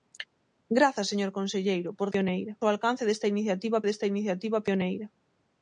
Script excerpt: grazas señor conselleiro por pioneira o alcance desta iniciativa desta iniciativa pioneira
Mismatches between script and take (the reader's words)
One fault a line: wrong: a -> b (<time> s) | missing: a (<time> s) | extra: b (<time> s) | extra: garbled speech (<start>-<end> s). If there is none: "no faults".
no faults